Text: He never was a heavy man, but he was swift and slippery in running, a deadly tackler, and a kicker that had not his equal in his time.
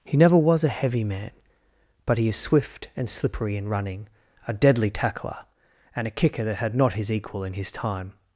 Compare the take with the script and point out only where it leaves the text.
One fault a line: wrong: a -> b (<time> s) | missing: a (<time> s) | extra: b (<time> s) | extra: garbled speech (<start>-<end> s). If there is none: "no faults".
wrong: was -> is (2.3 s)